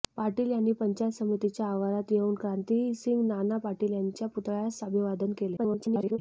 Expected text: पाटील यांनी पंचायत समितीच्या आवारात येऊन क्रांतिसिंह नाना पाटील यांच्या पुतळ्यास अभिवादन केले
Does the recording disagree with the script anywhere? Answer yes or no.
yes